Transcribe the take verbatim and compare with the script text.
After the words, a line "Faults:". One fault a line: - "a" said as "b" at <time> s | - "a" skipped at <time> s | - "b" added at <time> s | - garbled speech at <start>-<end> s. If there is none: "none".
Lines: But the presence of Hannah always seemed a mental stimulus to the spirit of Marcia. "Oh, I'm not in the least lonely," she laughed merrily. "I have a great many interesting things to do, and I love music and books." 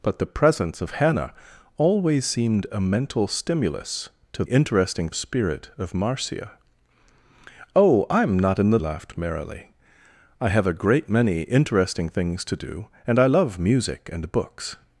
But the presence of Hannah always seemed a mental stimulus to interesting spirit of Marcia. "Oh, I'm not in the laughed merrily. "I have a great many interesting things to do, and I love music and books."
Faults:
- "the" said as "interesting" at 4.4 s
- "least lonely she" skipped at 8.8 s